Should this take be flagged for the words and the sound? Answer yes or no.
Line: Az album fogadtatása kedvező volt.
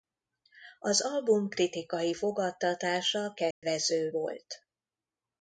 yes